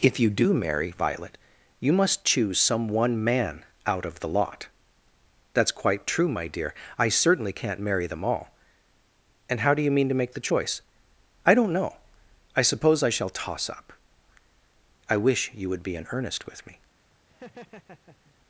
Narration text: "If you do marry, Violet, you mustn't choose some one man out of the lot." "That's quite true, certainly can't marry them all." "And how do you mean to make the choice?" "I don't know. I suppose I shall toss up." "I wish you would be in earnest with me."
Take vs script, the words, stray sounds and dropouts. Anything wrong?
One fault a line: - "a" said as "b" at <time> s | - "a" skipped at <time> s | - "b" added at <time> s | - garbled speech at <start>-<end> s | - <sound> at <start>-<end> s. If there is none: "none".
- "mustn't" said as "must" at 1.9 s
- "my dear I" added at 6.3 s
- laugh at 17.3-18.4 s